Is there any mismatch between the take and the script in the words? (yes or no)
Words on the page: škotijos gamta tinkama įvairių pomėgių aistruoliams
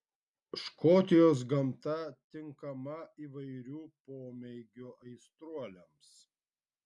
no